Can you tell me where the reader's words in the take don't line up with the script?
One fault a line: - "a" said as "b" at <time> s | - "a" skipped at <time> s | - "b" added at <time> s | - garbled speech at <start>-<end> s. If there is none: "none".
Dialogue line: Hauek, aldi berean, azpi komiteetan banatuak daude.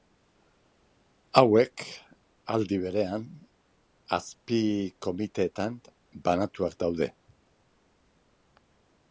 none